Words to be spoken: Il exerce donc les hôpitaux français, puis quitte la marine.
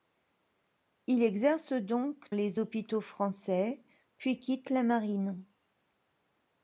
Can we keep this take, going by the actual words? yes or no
yes